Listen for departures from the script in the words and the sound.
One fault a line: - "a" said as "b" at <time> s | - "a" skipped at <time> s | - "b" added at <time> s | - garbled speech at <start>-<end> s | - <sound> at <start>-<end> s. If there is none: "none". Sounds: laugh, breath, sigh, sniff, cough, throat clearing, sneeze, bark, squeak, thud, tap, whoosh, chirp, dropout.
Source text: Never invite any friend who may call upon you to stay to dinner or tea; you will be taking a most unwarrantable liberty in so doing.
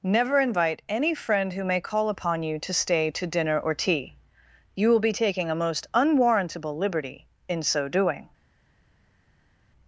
none